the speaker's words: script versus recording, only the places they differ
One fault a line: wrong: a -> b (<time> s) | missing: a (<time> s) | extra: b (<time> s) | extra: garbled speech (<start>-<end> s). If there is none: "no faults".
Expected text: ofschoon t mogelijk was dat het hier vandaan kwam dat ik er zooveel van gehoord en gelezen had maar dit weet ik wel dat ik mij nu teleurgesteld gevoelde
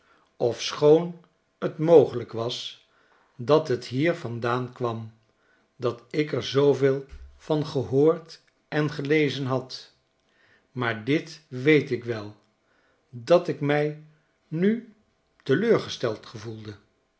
no faults